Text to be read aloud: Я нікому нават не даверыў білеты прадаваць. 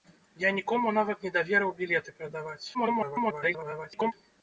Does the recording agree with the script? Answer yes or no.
no